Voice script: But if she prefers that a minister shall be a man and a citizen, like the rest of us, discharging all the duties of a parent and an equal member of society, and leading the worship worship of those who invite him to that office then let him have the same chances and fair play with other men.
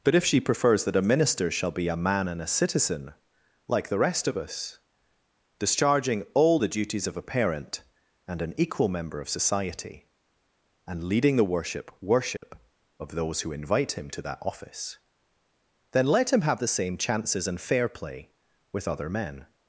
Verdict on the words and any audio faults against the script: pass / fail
fail